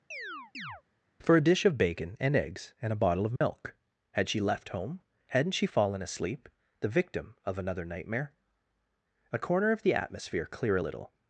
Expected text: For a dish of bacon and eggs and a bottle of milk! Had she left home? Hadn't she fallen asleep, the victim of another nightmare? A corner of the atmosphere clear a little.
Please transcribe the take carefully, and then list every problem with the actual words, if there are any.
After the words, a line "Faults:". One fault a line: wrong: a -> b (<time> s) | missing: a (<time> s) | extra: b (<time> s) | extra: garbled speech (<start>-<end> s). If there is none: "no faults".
For a dish of bacon and eggs and a bottle of milk! Had she left home? Hadn't she fallen asleep, the victim of another nightmare? A corner of the atmosphere clear a little.
Faults:
no faults